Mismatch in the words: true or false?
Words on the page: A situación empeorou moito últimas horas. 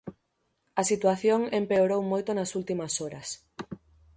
true